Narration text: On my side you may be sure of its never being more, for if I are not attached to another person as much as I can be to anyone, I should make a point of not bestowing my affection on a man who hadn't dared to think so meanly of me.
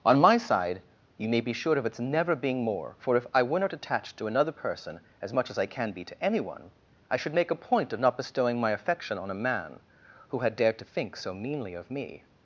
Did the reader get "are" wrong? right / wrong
wrong